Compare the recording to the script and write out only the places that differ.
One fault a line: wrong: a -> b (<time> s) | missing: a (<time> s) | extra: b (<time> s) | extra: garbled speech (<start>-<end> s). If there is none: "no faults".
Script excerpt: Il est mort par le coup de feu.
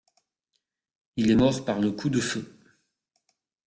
no faults